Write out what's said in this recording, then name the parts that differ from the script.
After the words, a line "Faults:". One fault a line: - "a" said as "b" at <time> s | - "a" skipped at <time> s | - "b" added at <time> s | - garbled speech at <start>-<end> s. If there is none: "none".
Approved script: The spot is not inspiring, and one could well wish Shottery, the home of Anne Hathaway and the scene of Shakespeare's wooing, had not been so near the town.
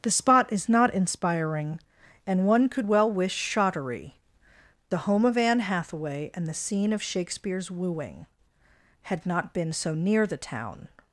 The spot is not inspiring, and one could well wish Shottery, the home of Anne Hathaway and the scene of Shakespeare's wooing, had not been so near the town.
Faults:
none